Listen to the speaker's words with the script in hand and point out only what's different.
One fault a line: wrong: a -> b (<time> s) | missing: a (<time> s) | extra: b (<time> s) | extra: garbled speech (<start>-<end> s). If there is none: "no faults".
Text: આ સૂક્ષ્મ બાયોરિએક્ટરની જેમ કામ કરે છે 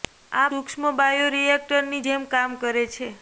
no faults